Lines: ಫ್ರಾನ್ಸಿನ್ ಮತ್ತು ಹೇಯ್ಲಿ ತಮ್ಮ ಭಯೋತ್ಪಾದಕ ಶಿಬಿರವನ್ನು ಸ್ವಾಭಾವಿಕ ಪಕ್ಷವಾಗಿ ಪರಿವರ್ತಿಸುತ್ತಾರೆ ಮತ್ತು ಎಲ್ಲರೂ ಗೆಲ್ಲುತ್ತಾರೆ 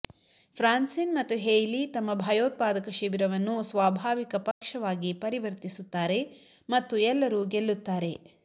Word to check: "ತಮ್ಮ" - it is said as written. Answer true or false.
true